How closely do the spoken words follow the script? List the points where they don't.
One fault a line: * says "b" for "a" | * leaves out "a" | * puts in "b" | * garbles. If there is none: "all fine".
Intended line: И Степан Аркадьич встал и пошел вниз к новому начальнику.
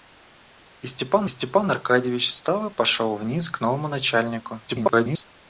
* puts in "Степан"
* garbles